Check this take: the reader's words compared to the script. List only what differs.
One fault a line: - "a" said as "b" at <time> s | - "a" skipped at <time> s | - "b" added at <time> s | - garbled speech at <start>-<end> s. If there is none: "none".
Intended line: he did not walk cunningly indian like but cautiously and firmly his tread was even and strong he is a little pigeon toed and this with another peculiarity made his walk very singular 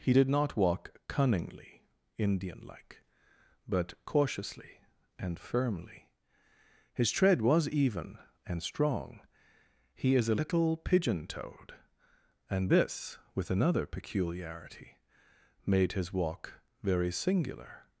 none